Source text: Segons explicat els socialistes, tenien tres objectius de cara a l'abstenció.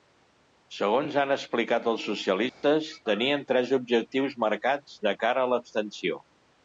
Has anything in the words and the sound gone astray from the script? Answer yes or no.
yes